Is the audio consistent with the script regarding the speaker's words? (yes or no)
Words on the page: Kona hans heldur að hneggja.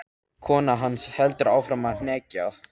no